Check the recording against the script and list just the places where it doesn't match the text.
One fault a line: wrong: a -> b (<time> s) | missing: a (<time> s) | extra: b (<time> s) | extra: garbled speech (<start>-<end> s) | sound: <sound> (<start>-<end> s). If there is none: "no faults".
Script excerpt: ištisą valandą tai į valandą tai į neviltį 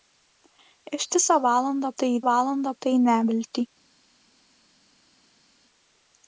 no faults